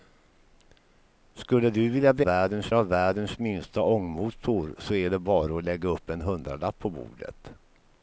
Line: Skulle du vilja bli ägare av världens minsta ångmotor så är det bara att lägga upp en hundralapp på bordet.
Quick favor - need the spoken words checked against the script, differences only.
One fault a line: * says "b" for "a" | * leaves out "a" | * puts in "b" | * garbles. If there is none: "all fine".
* says "världens" for "ägare"